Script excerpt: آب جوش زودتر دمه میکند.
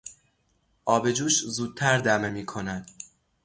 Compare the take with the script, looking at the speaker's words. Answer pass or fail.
pass